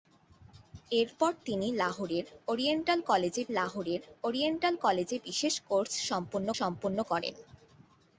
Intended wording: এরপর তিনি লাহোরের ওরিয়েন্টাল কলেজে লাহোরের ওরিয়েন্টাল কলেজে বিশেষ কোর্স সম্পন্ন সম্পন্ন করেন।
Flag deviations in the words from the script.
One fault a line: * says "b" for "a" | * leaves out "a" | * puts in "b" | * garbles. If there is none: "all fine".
all fine